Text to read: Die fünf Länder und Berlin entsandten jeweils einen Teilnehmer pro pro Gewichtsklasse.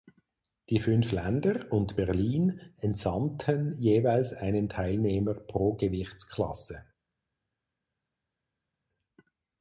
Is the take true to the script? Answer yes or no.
no